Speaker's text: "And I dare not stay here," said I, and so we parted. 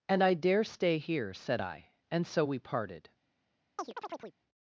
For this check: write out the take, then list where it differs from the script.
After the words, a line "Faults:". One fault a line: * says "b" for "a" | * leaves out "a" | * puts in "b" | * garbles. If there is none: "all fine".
"And I dare stay here," said I, and so we parted.
Faults:
* leaves out "not"